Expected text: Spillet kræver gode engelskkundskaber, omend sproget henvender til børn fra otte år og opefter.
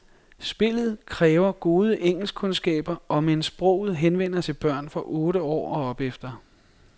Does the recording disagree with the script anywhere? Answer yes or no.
no